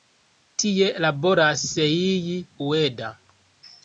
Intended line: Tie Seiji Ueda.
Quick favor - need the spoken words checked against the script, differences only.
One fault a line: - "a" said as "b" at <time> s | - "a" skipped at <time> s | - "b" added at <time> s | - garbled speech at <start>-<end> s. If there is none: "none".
- "laboras" added at 1.1 s